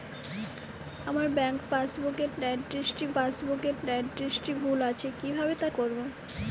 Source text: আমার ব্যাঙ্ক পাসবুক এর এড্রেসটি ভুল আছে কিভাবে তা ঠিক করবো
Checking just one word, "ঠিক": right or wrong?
wrong